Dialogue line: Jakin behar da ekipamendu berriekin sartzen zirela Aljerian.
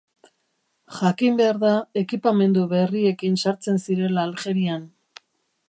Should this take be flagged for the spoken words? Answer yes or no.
no